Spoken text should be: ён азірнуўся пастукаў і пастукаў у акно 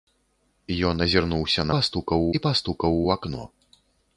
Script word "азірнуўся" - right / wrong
right